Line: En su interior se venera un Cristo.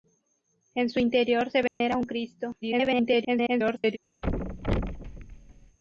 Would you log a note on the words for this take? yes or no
yes